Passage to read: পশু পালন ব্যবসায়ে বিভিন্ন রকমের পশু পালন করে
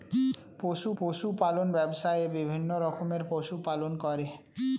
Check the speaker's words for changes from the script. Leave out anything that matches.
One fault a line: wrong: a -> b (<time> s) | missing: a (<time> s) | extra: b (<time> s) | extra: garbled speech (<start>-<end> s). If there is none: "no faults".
extra: পশু (1.0 s)